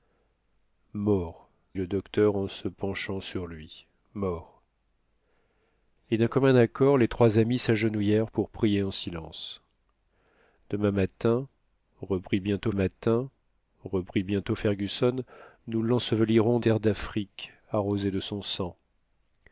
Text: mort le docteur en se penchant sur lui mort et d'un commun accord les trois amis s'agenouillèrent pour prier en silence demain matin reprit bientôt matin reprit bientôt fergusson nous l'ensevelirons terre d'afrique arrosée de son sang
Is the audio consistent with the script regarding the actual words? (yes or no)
yes